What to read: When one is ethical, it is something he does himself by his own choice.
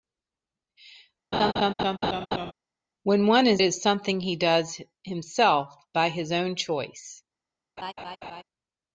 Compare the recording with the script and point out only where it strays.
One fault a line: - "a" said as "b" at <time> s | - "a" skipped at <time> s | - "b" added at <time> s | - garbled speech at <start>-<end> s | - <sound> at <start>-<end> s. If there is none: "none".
- laugh at 1.3-2.5 s
- "ethical it" skipped at 3.6 s
- laugh at 7.8-8.4 s